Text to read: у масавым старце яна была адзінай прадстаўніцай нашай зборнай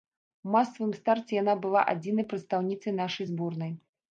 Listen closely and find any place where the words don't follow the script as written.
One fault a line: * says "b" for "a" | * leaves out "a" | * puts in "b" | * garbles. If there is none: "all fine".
all fine